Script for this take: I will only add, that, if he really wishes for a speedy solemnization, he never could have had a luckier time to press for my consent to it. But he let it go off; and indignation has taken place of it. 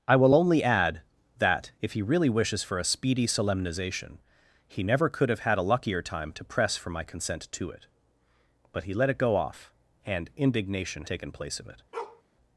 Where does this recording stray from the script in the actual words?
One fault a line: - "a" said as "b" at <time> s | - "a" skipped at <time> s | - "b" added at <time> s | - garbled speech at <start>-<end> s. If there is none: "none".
- "has" skipped at 11.0 s